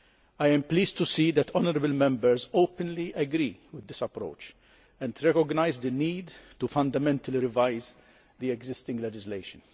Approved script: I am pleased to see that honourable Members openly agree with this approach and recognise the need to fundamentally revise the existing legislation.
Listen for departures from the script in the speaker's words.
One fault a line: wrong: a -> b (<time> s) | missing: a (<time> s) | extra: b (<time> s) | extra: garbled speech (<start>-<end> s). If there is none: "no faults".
no faults